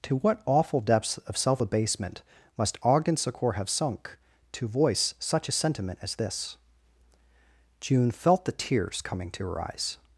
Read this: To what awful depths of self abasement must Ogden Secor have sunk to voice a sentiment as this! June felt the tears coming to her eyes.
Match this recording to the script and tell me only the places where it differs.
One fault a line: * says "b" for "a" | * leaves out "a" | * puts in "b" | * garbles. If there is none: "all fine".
* puts in "such"